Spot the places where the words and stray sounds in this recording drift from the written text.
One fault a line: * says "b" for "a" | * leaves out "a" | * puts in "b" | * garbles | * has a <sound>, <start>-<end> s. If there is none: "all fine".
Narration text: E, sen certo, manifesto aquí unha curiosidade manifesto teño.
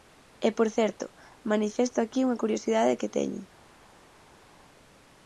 * says "por" for "sen"
* says "que" for "manifesto"